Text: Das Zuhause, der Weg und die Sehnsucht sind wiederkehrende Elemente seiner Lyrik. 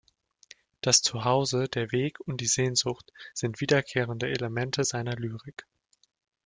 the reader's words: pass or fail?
pass